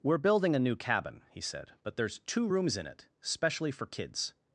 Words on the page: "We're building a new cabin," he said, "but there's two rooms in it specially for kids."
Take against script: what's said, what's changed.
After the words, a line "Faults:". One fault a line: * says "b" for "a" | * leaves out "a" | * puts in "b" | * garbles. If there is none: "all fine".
"We're building a new cabin," he said, "but there's two rooms in it specially for kids."
Faults:
all fine